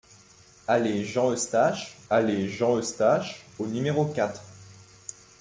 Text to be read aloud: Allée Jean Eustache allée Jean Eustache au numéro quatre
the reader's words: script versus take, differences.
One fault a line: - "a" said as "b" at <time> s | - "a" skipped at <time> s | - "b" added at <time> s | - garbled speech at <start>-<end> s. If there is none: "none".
none